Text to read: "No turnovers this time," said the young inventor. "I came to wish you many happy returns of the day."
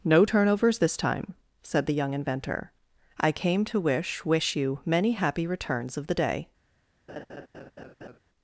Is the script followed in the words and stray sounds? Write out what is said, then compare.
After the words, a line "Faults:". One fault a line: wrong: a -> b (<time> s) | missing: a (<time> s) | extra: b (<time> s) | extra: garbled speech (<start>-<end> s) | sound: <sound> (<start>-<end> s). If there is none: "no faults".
"No turnovers this time," said the young inventor. "I came to wish wish you many happy returns of the day."
Faults:
extra: wish (4.2 s)
sound: laugh (7.1-8.2 s)